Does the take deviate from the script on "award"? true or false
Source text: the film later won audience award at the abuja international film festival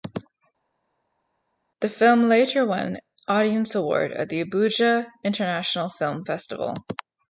false